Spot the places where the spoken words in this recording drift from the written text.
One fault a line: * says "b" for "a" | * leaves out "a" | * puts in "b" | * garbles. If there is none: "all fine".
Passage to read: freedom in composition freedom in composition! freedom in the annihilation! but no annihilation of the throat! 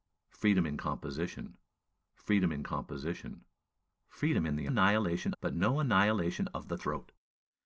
all fine